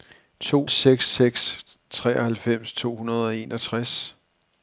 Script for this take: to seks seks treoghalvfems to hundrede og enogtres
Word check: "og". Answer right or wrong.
right